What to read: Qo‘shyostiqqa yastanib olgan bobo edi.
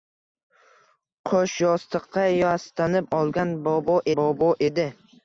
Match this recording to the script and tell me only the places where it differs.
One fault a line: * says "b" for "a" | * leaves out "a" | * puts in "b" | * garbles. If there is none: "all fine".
* puts in "bobo"